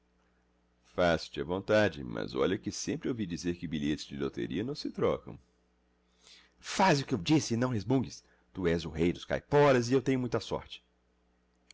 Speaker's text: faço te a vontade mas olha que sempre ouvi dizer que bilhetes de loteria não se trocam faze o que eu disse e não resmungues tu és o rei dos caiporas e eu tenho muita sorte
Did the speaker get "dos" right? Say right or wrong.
right